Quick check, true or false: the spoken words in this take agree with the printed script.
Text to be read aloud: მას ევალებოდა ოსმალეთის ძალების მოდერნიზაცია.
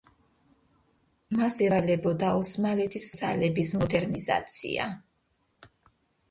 true